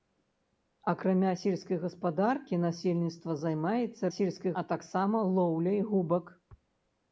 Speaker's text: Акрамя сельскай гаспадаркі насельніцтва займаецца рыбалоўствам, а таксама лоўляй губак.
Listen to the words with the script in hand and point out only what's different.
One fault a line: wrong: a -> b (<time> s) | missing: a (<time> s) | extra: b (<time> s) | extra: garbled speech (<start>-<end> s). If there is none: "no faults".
wrong: рыбалоўствам -> сельскай (4.1 s)